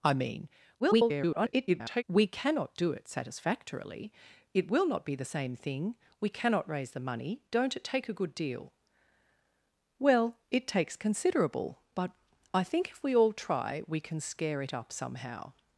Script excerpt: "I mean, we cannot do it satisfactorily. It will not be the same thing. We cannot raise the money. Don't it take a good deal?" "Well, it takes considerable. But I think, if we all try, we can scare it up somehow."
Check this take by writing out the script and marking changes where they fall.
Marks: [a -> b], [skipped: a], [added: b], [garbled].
"I mean, [garbled] we cannot do it satisfactorily. It will not be the same thing. We cannot raise the money. Don't it take a good deal?" "Well, it takes considerable. But I think, if we all try, we can scare it up somehow."